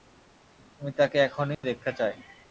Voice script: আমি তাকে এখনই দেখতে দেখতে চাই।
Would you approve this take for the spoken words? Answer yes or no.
no